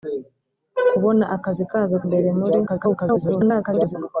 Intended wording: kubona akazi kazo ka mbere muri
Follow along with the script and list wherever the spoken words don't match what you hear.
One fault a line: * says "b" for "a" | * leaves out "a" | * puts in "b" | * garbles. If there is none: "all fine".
* leaves out "ka"
* garbles